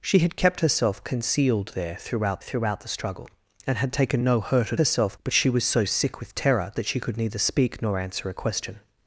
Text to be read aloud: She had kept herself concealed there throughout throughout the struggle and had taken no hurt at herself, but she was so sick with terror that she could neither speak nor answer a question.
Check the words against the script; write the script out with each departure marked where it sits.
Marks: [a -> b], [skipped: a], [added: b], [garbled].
She had kept herself concealed there throughout throughout the struggle and had taken no hurt at herself, but she was so sick with terror that she could neither speak nor answer a question.